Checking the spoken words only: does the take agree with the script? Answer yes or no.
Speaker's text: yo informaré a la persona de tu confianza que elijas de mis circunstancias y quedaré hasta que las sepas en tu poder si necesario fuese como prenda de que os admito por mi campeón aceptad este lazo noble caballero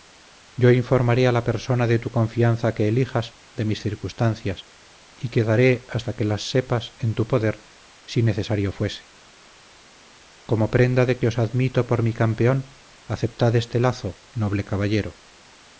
yes